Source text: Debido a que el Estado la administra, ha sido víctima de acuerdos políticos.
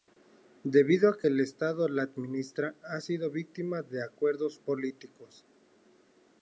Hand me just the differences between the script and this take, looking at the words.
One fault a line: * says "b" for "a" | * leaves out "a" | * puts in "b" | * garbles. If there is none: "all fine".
all fine